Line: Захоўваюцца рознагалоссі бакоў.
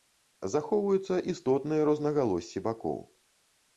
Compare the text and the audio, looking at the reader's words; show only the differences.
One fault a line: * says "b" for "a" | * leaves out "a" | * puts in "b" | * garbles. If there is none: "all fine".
* puts in "істотныя"